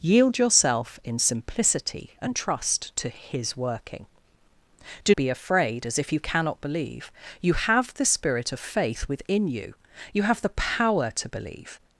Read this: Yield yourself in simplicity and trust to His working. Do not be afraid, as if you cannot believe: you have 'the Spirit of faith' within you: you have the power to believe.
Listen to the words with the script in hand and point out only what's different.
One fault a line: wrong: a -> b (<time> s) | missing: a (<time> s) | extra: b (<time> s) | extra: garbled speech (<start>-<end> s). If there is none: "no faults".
missing: not (5.1 s)